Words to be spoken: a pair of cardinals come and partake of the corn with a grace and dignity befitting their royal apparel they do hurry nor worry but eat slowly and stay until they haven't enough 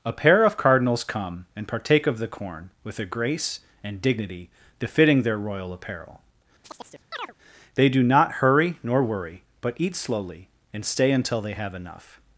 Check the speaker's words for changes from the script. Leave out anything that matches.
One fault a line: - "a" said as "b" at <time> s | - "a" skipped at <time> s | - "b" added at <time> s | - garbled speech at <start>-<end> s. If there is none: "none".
- "not" added at 8.0 s
- "haven't" said as "have" at 11.5 s